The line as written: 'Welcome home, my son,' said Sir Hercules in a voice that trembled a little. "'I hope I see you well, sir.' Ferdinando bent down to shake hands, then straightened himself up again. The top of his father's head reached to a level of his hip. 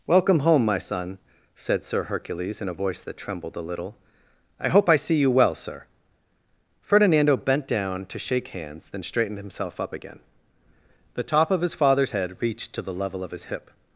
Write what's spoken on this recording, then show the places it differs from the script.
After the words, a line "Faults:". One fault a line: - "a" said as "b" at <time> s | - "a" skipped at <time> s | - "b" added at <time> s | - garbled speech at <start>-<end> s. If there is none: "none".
'Welcome home, my son,' said Sir Hercules in a voice that trembled a little. "'I hope I see you well, sir.' Ferdinando bent down to shake hands, then straightened himself up again. The top of his father's head reached to the level of his hip.
Faults:
- "a" said as "the" at 12.8 s